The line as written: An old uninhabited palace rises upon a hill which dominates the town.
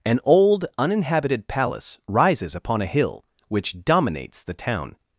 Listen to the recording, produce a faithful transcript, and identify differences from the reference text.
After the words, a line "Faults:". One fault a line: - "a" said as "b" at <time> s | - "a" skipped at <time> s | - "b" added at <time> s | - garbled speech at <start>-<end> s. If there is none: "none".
An old uninhabited palace rises upon a hill which dominates the town.
Faults:
none